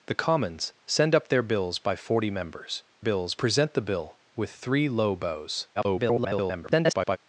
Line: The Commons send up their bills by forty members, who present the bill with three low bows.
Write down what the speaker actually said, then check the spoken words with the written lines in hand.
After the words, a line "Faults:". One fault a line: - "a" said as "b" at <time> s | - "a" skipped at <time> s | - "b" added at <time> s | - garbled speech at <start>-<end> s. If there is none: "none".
The Commons send up their bills by forty members, bills present the bill with three low bows. [garbled]
Faults:
- "who" said as "bills" at 3.0 s
- garbled speech at 5.8-7.2 s